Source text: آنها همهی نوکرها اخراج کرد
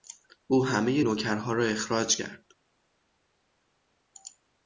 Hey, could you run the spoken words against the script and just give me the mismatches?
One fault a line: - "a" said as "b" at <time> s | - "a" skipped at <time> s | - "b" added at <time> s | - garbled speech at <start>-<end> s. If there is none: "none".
- "آنها" said as "او" at 0.5 s
- "را" added at 1.5 s